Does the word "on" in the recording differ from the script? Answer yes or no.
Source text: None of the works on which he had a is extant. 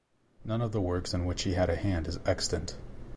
yes